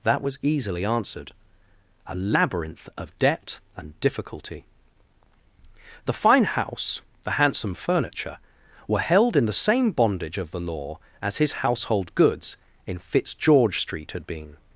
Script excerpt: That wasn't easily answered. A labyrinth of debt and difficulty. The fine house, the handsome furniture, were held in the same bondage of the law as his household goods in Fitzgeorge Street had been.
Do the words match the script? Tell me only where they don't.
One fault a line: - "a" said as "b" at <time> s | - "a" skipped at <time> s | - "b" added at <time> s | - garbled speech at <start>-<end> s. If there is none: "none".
- "wasn't" said as "was" at 0.2 s